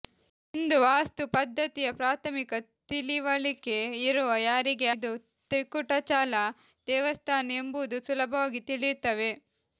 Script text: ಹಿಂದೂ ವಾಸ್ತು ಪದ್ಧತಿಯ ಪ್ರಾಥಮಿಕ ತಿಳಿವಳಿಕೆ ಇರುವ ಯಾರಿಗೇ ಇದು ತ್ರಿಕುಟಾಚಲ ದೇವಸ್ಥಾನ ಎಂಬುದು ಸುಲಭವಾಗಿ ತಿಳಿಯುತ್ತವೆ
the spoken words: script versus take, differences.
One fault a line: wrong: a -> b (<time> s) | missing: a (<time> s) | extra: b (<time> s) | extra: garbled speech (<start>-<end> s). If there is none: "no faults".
no faults